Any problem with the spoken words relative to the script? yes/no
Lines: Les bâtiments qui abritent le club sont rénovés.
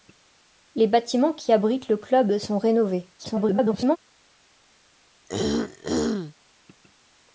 yes